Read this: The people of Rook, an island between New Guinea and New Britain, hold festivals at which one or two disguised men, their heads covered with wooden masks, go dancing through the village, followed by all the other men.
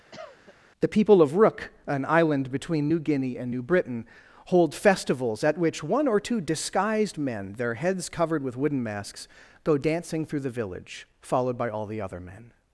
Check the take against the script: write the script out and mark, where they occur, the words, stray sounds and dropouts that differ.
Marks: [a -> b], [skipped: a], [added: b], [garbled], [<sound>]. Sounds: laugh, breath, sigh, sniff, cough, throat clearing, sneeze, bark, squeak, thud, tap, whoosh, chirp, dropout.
[cough] The people of Rook, an island between New Guinea and New Britain, hold festivals at which one or two disguised men, their heads covered with wooden masks, go dancing through the village, followed by all the other men.